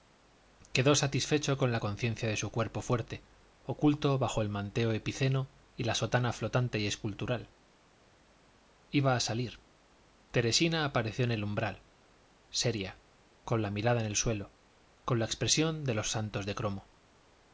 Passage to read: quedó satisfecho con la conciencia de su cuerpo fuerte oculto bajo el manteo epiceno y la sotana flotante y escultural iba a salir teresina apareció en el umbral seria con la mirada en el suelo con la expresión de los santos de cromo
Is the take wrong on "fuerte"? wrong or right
right